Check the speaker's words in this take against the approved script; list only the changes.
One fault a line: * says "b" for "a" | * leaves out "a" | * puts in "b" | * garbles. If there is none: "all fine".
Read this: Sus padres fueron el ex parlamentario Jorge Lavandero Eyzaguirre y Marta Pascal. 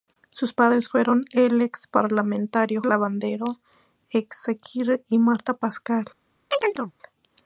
* leaves out "Jorge"